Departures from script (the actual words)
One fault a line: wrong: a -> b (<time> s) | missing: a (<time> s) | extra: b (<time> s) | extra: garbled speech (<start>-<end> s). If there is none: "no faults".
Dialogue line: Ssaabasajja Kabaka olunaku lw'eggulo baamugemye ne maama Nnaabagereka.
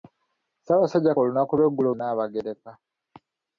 missing: Kabaka (1.2 s)
missing: baamugemye ne maama (1.9 s)